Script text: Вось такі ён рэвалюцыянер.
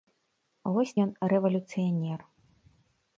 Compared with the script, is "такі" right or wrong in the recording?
wrong